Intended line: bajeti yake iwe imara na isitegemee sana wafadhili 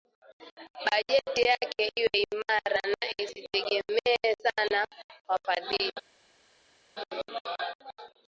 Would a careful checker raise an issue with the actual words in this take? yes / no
no